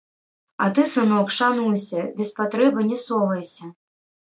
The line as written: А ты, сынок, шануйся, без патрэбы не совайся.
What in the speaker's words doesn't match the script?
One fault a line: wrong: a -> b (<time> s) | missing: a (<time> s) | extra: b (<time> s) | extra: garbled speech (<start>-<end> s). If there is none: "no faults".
no faults